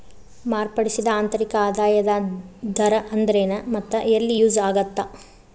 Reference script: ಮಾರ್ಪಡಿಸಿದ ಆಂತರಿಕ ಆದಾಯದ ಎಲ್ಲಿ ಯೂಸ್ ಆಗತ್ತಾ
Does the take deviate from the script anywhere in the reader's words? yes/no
yes